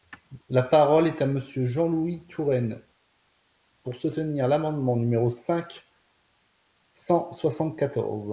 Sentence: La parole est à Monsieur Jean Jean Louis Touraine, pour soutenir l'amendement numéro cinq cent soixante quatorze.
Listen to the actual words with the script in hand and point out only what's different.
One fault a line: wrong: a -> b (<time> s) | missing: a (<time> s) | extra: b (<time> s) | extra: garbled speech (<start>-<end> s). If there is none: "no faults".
missing: Jean (1.9 s)